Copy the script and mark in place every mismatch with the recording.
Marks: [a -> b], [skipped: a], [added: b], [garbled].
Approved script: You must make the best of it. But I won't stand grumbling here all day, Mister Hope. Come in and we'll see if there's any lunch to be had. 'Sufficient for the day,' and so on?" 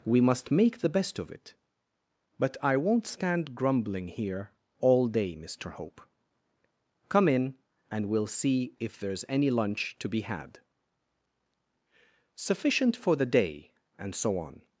[You -> We] must make the best of it. But I won't stand grumbling here all day, Mister Hope. Come in and we'll see if there's any lunch to be had. 'Sufficient for the day,' and so on?"